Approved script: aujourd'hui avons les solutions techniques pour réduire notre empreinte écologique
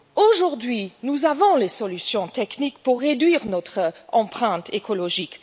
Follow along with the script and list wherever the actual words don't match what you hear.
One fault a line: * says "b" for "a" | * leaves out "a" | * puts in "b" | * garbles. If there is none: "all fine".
* puts in "nous"